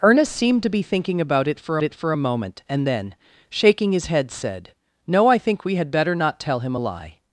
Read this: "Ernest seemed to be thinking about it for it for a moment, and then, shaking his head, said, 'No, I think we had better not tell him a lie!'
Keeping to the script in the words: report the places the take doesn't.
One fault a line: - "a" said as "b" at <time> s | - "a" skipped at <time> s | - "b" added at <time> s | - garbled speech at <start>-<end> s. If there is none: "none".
none